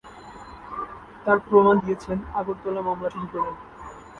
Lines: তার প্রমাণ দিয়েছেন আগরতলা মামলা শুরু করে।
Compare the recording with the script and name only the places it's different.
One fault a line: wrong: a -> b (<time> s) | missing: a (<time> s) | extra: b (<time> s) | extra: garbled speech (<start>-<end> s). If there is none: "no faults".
no faults